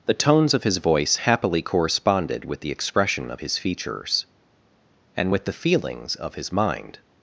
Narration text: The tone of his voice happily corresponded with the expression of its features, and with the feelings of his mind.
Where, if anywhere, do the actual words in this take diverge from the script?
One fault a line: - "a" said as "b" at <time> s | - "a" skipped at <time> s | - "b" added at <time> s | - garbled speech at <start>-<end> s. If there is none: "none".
- "tone" said as "tones" at 0.1 s
- "its" said as "his" at 3.4 s